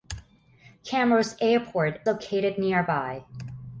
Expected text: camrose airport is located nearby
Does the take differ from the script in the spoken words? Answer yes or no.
yes